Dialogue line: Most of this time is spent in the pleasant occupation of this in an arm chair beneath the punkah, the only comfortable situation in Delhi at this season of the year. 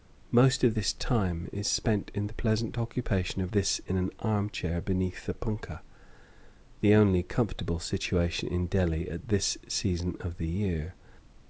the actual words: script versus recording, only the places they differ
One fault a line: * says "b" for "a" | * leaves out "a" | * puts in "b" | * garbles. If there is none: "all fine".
all fine